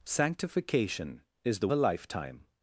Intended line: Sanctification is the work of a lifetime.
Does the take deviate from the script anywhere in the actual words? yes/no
yes